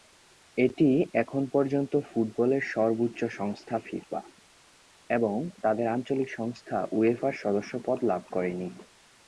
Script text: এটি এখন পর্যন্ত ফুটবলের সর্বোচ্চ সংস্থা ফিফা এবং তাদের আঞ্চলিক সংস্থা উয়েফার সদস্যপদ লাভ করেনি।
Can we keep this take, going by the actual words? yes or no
yes